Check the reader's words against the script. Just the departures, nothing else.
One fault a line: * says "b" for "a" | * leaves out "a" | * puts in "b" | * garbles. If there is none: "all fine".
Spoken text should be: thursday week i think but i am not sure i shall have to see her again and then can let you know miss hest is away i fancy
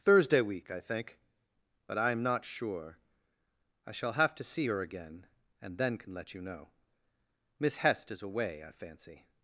all fine